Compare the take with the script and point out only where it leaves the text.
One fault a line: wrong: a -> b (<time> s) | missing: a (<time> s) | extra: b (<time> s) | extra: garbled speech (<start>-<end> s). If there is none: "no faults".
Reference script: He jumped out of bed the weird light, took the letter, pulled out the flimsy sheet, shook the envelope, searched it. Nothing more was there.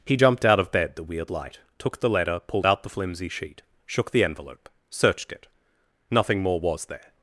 no faults